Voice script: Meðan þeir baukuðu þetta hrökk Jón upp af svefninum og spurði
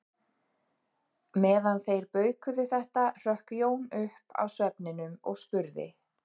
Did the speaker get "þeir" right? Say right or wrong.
right